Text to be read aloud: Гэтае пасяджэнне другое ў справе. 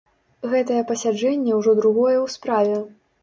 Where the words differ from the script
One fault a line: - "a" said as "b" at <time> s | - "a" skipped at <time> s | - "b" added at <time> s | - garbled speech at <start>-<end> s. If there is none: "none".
- "ўжо" added at 1.6 s